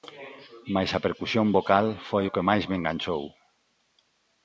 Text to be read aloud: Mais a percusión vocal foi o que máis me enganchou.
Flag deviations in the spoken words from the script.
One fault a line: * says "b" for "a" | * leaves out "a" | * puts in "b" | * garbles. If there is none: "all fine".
all fine